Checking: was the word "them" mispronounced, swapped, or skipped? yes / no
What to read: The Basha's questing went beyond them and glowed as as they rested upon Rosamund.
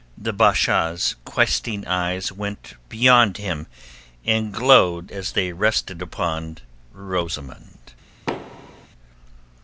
yes